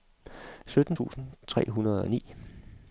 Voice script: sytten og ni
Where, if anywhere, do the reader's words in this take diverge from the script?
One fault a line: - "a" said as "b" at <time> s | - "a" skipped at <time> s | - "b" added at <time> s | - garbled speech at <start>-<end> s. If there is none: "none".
- "tusind tre hundrede" added at 0.9 s